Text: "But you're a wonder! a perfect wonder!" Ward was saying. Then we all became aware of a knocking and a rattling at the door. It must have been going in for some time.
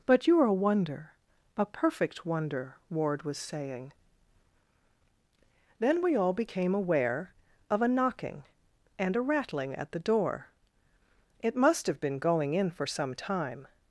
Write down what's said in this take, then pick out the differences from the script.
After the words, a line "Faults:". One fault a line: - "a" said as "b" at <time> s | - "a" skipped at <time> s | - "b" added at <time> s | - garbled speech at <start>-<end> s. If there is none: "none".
"But you're a wonder! a perfect wonder!" Ward was saying. Then we all became aware of a knocking and a rattling at the door. It must have been going in for some time.
Faults:
none